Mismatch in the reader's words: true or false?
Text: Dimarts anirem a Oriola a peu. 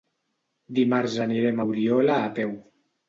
false